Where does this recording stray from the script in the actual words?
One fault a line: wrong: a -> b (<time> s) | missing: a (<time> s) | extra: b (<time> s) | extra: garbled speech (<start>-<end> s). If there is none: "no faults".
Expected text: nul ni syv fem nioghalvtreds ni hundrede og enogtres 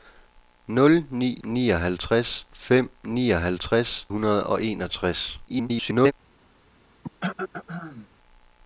wrong: syv -> nioghalvtreds (1.4 s)
missing: ni (4.1 s)
extra: garbled speech (5.5-6.1 s)